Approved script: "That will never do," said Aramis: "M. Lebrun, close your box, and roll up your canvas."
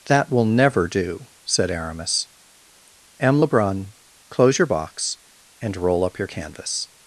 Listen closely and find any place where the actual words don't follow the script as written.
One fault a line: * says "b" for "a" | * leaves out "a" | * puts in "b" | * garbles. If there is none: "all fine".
all fine